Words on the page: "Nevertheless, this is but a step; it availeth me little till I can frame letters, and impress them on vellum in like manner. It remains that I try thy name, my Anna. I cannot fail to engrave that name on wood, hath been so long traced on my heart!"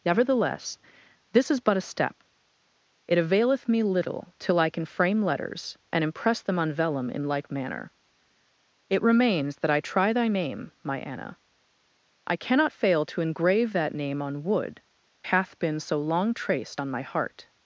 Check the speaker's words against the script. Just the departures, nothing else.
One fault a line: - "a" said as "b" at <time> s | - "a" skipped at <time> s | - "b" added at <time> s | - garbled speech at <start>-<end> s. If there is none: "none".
none